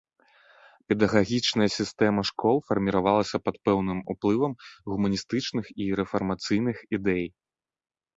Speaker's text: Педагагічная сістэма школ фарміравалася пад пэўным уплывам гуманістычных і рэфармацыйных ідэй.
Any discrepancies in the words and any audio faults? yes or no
no